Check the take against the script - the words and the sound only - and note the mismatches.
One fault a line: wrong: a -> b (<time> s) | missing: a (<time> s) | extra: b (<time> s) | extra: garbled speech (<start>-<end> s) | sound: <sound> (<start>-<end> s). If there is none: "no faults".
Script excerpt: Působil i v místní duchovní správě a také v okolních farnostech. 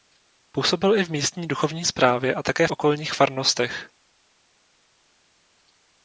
missing: v (2.7 s)